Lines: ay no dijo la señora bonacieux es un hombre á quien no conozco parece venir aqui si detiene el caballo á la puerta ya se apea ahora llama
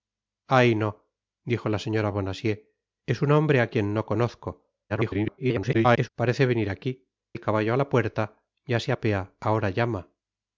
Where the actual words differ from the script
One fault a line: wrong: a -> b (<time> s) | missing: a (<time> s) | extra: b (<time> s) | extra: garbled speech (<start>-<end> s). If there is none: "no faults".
extra: garbled speech (4.9-6.1 s)
missing: si detiene (7.1 s)